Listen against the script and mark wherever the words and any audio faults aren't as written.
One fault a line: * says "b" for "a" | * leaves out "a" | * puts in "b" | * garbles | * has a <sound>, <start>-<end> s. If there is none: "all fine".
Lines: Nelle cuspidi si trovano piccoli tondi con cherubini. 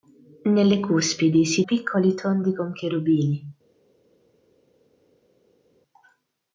* leaves out "trovano"